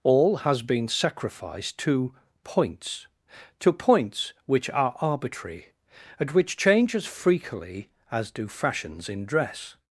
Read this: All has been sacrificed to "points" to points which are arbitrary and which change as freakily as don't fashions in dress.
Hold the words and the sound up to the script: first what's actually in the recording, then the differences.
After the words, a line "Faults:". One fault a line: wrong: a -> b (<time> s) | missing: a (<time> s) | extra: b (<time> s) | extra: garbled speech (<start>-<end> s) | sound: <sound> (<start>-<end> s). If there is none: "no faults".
All has been sacrificed to "points" to points which are arbitrary and which change as freakily as do fashions in dress.
Faults:
wrong: don't -> do (8.3 s)